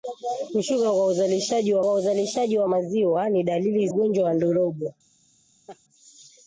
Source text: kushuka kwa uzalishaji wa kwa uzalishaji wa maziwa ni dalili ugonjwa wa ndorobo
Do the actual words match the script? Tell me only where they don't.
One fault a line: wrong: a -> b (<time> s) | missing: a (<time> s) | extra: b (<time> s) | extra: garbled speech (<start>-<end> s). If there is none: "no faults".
no faults